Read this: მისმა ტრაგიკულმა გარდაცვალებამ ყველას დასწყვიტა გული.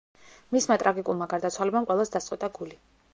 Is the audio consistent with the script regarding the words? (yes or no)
yes